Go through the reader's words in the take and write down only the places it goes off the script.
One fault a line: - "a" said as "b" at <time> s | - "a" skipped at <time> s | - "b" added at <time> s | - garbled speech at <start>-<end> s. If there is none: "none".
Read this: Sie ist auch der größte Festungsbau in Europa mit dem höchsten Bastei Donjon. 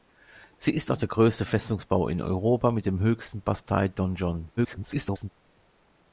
- garbled speech at 4.6-5.3 s